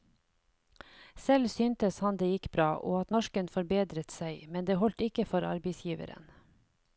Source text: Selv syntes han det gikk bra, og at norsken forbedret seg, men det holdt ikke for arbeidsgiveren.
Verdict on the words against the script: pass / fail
pass